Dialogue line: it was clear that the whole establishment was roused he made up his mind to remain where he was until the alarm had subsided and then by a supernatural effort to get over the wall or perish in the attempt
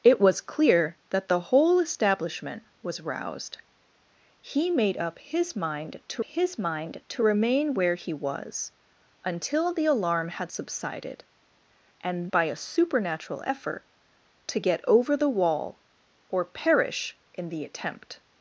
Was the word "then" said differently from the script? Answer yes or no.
yes